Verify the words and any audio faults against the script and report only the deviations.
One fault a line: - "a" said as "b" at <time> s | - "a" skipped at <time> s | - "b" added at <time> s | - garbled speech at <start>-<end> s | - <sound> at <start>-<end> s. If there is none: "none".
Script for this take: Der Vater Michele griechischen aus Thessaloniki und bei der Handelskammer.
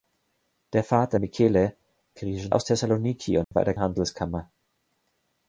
- dropout at 3.4-3.5 s